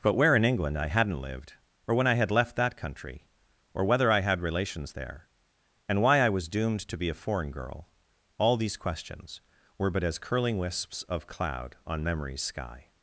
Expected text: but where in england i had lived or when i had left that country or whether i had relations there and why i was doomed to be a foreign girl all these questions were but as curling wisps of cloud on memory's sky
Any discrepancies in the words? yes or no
yes